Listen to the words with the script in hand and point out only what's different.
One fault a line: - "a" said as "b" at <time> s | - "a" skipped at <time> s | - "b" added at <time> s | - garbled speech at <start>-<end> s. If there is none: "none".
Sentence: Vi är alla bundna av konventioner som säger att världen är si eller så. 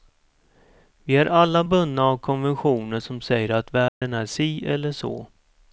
none